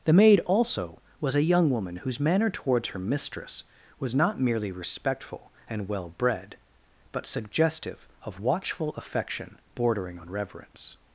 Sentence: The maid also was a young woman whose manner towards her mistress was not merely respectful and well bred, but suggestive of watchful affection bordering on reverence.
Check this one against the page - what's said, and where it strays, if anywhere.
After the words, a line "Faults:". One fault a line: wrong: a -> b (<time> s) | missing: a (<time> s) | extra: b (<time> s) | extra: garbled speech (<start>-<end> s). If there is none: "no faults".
The maid also was a young woman whose manner towards her mistress was not merely respectful and well bred, but suggestive of watchful affection bordering on reverence.
Faults:
no faults